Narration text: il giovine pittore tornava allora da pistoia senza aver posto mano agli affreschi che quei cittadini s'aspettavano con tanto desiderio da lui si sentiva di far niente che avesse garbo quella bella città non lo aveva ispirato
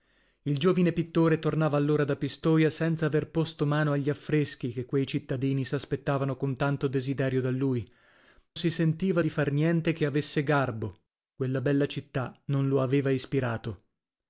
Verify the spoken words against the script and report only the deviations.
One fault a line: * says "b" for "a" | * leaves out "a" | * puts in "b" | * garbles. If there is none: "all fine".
all fine